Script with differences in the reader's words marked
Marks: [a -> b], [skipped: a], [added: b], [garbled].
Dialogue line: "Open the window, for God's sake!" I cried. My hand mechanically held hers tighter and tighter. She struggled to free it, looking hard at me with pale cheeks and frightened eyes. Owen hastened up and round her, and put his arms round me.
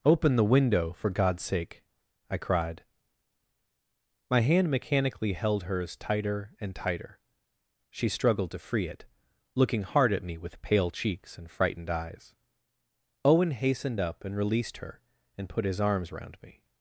"Open the window, for God's sake!" I cried. My hand mechanically held hers tighter and tighter. She struggled to free it, looking hard at me with pale cheeks and frightened eyes. Owen hastened up and [round -> released] her, and put his arms round me.